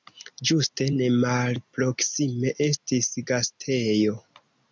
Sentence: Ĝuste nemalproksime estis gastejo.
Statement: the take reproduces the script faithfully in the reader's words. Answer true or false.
true